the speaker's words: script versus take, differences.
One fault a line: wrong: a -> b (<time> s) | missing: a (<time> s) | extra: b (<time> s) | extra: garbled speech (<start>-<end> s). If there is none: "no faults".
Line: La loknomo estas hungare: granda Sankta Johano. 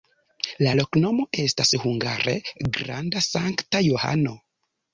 no faults